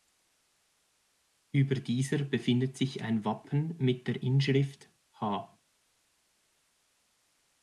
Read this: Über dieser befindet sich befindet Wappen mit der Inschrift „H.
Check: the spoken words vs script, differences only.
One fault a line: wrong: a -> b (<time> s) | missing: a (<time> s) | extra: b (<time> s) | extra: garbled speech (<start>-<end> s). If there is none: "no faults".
wrong: befindet -> ein (3.0 s)